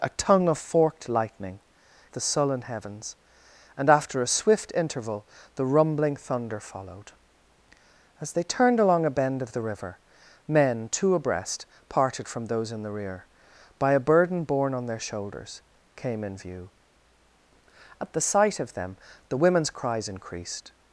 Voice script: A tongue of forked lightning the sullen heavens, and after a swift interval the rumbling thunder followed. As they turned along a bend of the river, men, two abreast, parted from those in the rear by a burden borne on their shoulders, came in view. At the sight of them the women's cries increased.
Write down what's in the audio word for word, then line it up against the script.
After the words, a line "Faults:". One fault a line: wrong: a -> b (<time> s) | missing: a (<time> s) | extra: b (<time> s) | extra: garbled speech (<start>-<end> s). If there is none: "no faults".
A tongue of forked lightning the sullen heavens, and after a swift interval the rumbling thunder followed. As they turned along a bend of the river, men, two abreast, parted from those in the rear by a burden borne on their shoulders, came in view. At the sight of them the women's cries increased.
Faults:
no faults